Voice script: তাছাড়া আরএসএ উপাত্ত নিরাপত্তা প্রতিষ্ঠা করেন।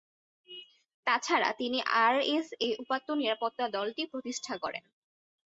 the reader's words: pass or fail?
fail